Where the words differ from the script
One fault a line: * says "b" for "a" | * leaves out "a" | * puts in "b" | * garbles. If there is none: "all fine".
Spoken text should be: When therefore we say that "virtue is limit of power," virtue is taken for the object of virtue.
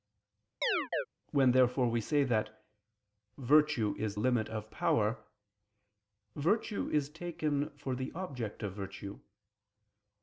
all fine